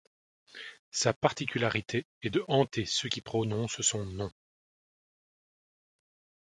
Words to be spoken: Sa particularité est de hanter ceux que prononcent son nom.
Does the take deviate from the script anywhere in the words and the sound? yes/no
yes